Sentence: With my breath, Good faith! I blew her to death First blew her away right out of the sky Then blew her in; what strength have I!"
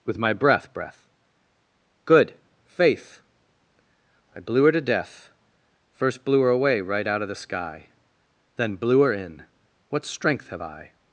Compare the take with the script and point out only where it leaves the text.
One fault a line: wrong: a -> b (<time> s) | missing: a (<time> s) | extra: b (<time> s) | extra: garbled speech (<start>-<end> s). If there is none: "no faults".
extra: breath (0.7 s)